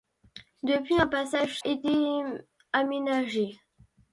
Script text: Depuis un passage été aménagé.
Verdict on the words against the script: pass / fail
pass